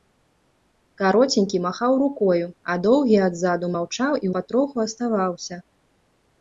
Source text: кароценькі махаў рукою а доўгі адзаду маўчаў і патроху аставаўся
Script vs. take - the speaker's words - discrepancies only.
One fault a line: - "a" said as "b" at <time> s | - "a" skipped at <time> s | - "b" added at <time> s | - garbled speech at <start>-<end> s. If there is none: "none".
none